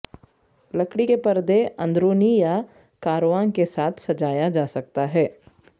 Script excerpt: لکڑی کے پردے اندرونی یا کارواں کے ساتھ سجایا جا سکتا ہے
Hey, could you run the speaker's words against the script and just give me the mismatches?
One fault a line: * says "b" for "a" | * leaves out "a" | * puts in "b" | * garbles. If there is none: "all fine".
all fine